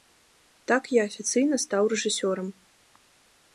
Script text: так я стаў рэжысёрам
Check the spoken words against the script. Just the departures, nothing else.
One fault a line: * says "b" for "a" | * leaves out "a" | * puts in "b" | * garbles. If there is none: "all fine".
* puts in "афіцыйна"